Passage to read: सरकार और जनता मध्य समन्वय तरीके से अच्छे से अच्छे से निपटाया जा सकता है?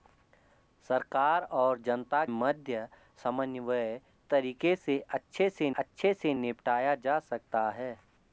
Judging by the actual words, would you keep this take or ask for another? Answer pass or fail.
pass